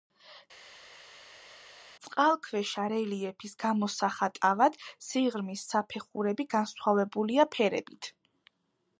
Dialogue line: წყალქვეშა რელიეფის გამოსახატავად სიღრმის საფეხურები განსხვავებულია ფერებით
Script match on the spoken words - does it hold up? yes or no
yes